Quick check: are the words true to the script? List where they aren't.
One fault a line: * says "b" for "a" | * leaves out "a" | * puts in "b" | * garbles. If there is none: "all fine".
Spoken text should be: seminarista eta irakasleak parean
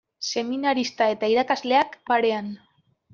all fine